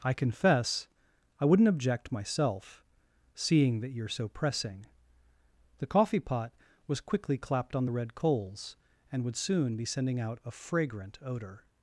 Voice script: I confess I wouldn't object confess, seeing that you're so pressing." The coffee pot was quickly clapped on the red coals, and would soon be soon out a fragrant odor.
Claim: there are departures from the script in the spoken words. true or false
true